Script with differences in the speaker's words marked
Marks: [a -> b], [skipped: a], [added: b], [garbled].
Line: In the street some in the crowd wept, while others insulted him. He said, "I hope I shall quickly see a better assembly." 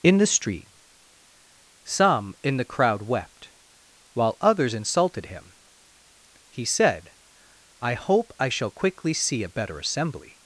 In the street some in the crowd wept, while others insulted him. He said, "I hope I shall quickly see a better assembly."